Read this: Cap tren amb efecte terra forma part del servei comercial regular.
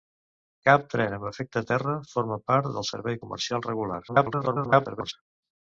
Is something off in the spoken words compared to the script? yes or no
yes